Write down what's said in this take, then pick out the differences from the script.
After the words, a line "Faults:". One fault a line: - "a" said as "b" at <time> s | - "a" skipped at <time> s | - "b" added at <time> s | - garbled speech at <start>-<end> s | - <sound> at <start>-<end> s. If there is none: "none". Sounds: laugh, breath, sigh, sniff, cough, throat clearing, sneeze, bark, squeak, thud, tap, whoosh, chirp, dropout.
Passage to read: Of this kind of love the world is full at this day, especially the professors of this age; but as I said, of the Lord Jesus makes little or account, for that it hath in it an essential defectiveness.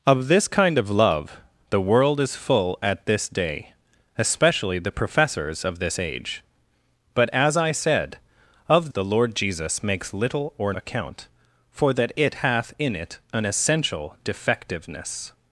Of this kind of love the world is full at this day, especially the professors of this age; but as I said, of the Lord Jesus makes little or account, for that it hath in it an essential defectiveness.
Faults:
none